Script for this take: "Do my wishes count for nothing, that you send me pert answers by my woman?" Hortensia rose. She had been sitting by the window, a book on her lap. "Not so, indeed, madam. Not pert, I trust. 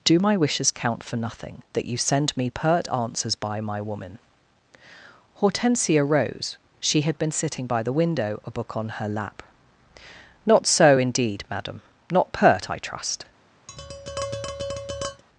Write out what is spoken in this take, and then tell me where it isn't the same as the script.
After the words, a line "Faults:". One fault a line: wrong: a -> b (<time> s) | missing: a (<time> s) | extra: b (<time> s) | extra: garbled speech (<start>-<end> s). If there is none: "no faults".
"Do my wishes count for nothing, that you send me pert answers by my woman?" Hortensia rose. She had been sitting by the window, a book on her lap. "Not so, indeed, madam. Not pert, I trust.
Faults:
no faults